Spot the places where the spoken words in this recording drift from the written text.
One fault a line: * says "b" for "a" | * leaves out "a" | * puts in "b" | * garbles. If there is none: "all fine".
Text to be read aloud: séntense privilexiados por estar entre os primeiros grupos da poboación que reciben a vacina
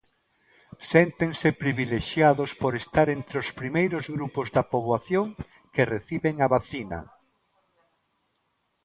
all fine